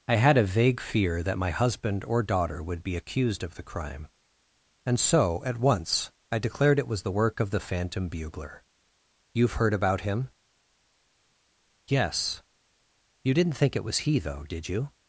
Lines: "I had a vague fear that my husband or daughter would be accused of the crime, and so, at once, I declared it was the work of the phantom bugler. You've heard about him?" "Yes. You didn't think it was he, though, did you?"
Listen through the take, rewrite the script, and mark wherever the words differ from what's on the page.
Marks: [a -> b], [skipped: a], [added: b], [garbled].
"I had a vague fear that my husband or daughter would be accused of the crime, and so, at once, I declared it was the work of the phantom bugler. You've heard about him?" "Yes. You didn't think it was he, though, did you?"